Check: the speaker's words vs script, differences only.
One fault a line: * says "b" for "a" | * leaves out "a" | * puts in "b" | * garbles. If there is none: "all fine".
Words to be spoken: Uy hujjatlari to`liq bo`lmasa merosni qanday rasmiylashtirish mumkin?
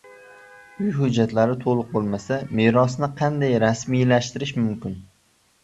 all fine